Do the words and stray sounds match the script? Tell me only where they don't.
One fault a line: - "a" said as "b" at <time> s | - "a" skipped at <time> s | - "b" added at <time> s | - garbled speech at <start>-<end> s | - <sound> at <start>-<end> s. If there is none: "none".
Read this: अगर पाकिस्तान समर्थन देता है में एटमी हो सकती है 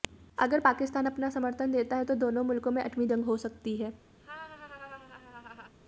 - "अपना" added at 1.1 s
- "तो दोनों मुल्कों" added at 2.0 s
- "जंग" added at 3.1 s
- laugh at 4.2-5.7 s